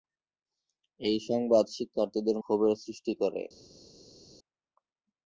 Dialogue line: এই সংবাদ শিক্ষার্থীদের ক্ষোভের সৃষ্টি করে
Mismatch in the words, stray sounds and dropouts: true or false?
false